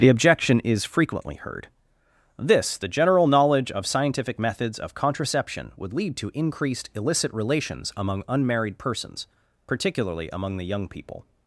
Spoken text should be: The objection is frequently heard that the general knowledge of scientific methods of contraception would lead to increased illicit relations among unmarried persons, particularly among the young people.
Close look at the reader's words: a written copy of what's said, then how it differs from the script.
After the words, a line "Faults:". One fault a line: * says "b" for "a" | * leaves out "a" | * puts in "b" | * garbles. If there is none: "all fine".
The objection is frequently heard this the general knowledge of scientific methods of contraception would lead to increased illicit relations among unmarried persons, particularly among the young people.
Faults:
* says "this" for "that"